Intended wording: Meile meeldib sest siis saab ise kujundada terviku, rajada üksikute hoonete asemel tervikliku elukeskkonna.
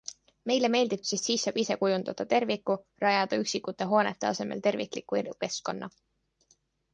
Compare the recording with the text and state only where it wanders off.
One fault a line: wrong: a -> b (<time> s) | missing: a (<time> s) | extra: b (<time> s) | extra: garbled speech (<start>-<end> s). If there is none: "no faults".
no faults